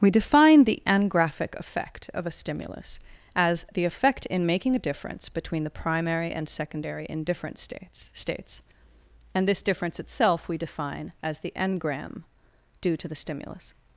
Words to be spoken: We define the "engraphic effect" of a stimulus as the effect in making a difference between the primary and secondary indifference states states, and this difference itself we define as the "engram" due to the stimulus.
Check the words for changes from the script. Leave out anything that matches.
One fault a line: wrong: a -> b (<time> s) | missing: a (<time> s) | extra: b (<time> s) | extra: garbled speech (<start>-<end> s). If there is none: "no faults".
no faults